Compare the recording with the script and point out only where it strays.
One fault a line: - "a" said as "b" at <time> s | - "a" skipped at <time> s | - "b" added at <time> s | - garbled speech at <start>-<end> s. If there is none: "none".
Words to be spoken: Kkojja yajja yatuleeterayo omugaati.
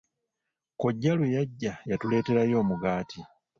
- "lwe" added at 1.2 s